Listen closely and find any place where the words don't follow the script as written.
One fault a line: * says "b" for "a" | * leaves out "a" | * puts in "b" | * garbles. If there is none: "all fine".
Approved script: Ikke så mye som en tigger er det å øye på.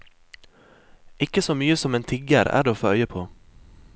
* puts in "få"